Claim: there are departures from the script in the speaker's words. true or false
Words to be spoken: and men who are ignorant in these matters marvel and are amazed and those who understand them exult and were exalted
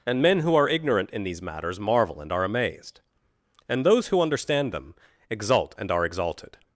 true